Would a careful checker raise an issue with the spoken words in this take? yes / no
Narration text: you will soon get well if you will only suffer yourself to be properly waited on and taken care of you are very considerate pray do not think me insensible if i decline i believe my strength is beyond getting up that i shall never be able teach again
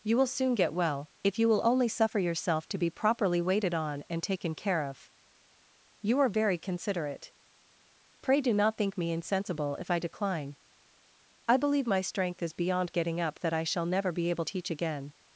no